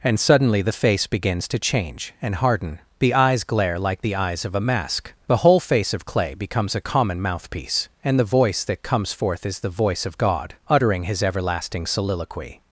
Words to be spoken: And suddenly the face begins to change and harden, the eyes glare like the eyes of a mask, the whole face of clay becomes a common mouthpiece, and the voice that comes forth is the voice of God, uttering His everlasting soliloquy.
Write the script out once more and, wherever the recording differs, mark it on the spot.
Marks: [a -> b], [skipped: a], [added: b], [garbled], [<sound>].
And suddenly the face begins to change and harden, the eyes glare like the eyes of a mask, the whole face of clay becomes a common mouthpiece, and the voice that comes forth is the voice of God, uttering His everlasting soliloquy.